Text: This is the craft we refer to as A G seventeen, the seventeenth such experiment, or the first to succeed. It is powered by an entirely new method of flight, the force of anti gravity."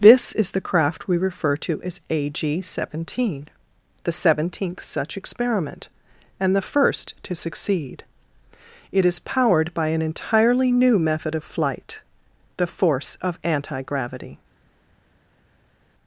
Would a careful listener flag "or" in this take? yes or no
yes